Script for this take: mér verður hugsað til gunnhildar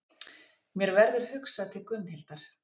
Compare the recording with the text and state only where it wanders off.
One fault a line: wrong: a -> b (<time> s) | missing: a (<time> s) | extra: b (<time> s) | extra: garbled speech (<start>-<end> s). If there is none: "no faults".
no faults